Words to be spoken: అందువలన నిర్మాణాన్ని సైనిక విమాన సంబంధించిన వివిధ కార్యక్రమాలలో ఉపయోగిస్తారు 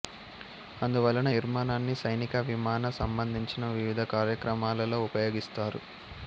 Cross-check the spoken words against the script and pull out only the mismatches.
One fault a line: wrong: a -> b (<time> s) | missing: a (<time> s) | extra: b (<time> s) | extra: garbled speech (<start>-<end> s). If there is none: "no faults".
no faults